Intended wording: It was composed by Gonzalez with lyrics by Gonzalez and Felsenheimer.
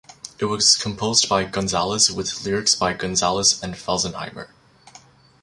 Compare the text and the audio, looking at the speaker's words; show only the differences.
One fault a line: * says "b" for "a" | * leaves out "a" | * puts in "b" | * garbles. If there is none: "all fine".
all fine